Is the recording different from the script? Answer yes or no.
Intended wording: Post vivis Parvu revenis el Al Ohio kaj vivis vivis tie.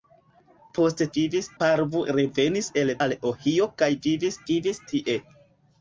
no